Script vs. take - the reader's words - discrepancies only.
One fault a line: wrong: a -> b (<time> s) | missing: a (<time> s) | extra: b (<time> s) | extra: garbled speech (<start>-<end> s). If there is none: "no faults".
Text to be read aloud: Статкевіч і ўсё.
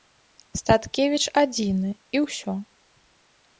extra: адзіны (1.4 s)